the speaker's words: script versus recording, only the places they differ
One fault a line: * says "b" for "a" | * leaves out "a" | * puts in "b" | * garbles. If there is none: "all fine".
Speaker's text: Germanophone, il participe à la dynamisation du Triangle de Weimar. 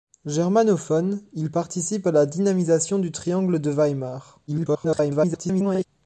* garbles